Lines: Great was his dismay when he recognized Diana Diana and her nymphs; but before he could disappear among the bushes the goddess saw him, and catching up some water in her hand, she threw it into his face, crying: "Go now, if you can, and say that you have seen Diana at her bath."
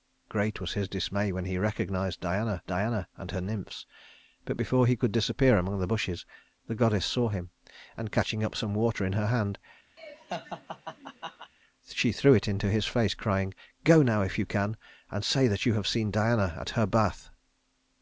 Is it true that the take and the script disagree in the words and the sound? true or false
true